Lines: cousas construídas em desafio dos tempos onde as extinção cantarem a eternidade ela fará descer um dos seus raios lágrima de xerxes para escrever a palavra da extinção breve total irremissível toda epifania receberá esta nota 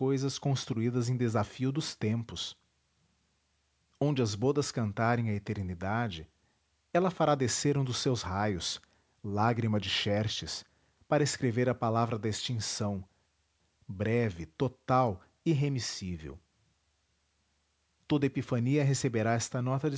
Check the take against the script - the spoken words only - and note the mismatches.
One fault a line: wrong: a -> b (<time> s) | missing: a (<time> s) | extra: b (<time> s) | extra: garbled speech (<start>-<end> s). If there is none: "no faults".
wrong: extinção -> bodas (4.3 s)